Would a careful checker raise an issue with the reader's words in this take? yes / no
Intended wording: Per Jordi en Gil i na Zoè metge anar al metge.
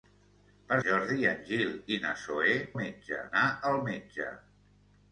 no